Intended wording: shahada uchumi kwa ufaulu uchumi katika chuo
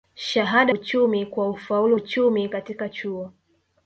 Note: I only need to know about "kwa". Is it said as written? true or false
true